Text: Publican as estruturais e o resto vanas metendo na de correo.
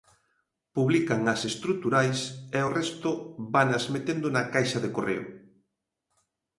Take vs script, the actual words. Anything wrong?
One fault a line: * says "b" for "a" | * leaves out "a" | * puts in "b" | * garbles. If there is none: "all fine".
* puts in "caixa"